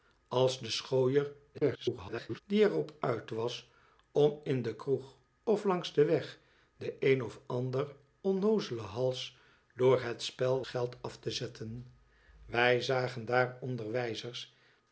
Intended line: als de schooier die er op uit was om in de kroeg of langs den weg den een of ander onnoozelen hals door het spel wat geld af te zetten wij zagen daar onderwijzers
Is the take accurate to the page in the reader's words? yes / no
no